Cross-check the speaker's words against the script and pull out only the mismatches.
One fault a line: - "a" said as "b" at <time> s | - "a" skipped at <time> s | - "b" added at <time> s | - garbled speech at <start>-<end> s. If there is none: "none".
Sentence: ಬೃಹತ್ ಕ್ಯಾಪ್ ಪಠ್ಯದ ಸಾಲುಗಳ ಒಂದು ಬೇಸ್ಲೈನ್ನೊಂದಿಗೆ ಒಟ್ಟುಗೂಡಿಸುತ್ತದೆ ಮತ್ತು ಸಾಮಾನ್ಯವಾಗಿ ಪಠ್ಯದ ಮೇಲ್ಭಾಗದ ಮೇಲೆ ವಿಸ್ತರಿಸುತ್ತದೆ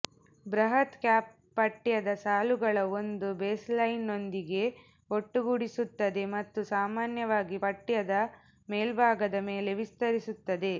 none